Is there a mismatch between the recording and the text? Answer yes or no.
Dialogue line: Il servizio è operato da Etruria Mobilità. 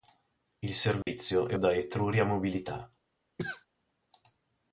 yes